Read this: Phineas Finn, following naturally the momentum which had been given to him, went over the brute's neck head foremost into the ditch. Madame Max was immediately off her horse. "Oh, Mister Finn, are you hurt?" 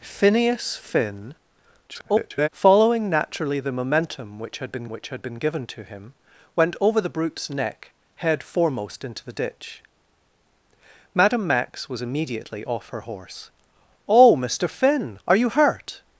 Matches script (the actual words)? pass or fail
fail